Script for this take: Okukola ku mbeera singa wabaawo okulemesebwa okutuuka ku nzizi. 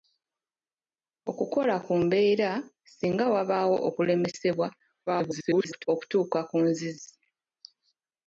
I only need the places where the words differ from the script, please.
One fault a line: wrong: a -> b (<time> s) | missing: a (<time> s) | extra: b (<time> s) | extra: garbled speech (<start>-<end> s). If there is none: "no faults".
extra: garbled speech (5.1-5.9 s)